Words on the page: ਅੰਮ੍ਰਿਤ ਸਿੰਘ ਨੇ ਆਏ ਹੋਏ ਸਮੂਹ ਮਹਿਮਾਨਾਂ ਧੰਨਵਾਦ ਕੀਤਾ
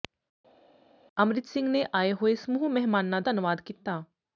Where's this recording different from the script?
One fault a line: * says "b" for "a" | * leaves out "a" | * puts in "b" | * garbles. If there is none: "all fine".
all fine